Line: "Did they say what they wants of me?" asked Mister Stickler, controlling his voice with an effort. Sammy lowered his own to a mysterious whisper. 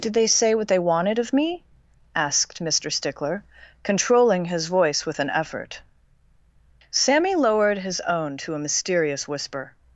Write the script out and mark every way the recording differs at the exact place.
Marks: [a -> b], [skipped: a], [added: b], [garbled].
"Did they say what they [wants -> wanted] of me?" asked Mister Stickler, controlling his voice with an effort. Sammy lowered his own to a mysterious whisper.